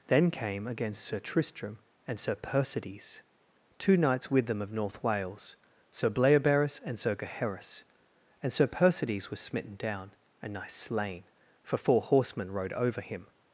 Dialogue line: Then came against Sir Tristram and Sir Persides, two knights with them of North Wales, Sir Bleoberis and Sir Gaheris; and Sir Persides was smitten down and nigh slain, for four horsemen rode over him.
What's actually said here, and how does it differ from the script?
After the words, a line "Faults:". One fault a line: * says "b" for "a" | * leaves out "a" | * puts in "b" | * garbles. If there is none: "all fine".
Then came against Sir Tristram and Sir Persides, two knights with them of North Wales, Sir Bleoberis and Sir Gaheris; and Sir Persides was smitten down and nigh slain, for four horsemen rode over him.
Faults:
all fine